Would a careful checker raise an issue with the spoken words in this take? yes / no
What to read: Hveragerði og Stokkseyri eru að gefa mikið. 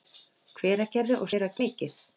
yes